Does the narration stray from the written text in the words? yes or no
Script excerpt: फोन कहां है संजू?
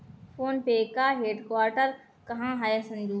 yes